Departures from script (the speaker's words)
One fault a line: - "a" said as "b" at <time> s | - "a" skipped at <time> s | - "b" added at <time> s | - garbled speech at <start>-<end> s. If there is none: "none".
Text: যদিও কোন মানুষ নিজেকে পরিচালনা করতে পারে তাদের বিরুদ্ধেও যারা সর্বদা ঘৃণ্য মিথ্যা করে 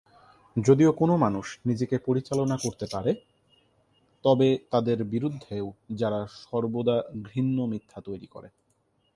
- "তবে" added at 4.2 s
- "তৈরি" added at 8.0 s